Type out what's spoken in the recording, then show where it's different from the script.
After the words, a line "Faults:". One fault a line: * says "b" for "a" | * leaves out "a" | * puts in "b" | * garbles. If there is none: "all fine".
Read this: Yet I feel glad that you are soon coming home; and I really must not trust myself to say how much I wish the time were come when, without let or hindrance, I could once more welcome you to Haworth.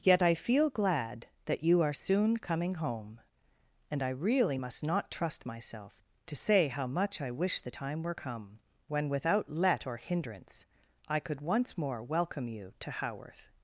Yet I feel glad that you are soon coming home; and I really must not trust myself to say how much I wish the time were come when, without let or hindrance, I could once more welcome you to Haworth.
Faults:
all fine